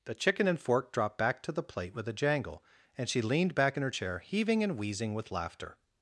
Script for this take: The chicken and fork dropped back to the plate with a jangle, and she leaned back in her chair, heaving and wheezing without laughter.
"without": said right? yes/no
no